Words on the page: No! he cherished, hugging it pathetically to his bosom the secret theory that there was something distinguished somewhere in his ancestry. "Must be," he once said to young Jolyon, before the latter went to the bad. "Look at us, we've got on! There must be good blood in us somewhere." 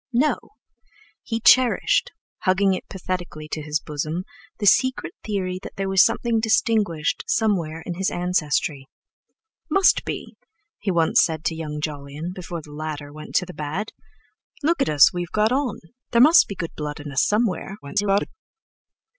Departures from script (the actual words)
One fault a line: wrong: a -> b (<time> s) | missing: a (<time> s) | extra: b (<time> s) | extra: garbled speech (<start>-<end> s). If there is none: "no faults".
extra: garbled speech (17.8-18.3 s)